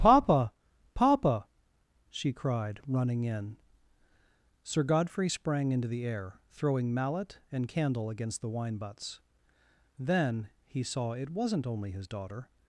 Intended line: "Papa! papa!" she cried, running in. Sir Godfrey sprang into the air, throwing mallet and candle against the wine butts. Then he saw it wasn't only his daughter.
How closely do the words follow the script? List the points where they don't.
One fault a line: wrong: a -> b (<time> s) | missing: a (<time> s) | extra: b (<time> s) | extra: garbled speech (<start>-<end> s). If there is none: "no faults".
no faults